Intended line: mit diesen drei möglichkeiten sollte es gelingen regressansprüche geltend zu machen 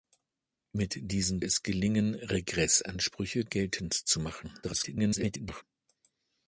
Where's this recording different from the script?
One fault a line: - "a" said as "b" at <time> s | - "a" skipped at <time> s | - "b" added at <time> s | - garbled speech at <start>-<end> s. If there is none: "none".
- "drei möglichkeiten sollte" skipped at 1.4 s
- garbled speech at 4.6-5.6 s